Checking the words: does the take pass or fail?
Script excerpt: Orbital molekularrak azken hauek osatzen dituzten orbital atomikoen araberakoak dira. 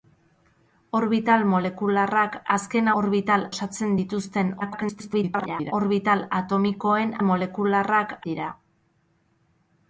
fail